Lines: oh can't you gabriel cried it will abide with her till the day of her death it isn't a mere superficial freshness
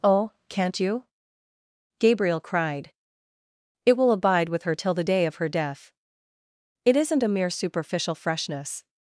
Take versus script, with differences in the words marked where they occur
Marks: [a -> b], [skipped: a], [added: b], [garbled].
oh can't you gabriel cried it will abide with her till the day of her death it isn't a mere superficial freshness